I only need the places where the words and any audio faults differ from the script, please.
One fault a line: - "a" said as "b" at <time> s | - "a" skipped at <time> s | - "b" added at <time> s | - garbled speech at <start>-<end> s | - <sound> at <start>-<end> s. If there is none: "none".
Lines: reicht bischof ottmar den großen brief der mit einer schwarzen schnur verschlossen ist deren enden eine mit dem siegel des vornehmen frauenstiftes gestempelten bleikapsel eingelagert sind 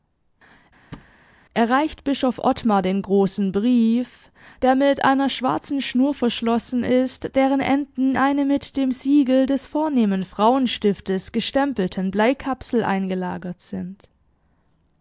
- thud at 0.9-1.1 s